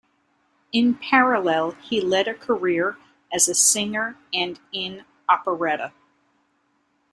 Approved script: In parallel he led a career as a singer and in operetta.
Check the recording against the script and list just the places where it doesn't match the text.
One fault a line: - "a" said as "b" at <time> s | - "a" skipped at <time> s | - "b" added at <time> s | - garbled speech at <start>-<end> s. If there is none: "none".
none